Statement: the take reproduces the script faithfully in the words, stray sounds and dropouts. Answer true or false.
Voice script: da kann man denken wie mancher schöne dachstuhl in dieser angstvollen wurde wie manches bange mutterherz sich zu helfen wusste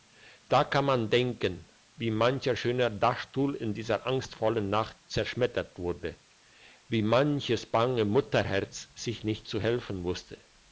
false